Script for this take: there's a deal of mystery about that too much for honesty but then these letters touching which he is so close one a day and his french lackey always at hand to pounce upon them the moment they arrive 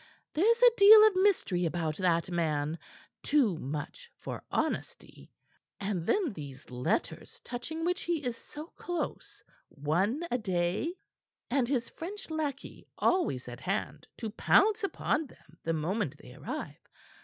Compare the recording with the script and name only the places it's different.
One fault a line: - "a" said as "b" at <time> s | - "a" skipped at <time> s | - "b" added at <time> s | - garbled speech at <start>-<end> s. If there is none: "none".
- "man" added at 2.3 s
- "but" said as "and" at 5.8 s